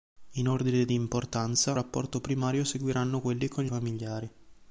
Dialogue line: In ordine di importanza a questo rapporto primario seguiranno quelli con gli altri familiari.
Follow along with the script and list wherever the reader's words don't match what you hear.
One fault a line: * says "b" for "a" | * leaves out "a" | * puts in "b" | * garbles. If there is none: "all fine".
* leaves out "a questo"
* leaves out "altri"